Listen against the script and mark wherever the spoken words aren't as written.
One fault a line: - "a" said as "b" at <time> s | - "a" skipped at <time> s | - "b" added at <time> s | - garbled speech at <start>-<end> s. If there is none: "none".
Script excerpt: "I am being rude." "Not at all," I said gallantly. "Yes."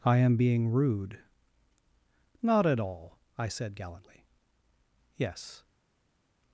none